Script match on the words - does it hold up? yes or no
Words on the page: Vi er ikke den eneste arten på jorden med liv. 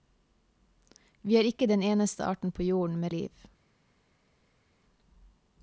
yes